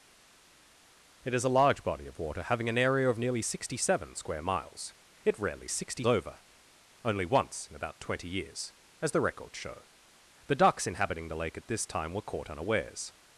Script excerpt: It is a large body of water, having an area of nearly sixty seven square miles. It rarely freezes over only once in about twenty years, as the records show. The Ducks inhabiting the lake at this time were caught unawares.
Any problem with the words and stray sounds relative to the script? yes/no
yes